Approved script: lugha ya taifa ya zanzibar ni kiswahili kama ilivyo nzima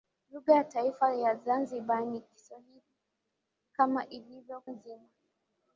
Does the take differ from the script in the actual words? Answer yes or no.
no